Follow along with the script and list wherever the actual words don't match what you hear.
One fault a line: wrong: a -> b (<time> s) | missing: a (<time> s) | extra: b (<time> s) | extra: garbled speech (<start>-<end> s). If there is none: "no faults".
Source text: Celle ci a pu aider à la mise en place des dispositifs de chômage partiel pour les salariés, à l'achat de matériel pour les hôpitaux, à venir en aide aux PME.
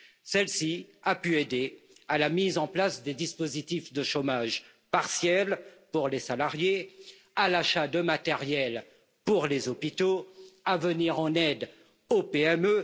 no faults